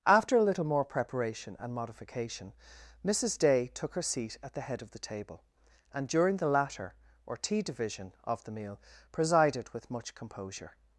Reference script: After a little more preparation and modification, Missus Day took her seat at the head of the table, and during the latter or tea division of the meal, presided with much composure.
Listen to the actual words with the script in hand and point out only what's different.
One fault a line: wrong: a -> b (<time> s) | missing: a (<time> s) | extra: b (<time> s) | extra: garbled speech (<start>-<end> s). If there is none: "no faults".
no faults